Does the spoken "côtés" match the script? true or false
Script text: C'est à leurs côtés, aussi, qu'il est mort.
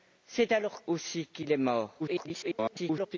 false